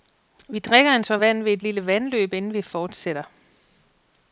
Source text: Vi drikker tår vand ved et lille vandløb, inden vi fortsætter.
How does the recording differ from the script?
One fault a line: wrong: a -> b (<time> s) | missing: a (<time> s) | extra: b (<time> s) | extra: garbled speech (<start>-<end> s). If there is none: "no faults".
extra: en (0.9 s)